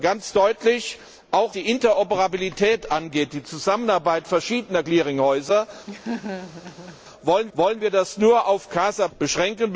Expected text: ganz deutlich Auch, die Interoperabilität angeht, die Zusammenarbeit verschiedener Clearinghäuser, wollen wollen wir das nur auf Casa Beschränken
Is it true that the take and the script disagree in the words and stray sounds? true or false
true